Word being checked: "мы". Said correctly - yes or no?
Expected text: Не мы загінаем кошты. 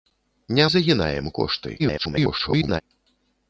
no